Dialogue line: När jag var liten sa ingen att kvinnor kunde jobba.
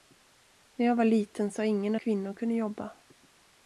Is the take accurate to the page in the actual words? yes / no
no